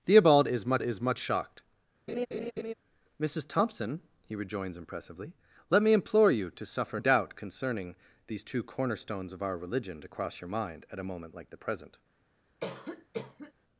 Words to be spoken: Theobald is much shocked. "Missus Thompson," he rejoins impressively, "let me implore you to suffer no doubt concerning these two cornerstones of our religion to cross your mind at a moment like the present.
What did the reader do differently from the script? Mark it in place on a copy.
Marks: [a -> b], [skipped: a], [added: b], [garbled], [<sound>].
Theobald is much [added: is much] shocked. [laugh] "Missus Thompson," he rejoins impressively, "let me implore you to suffer [skipped: no] doubt concerning these two cornerstones of our religion to cross your mind at a moment like the present. [cough]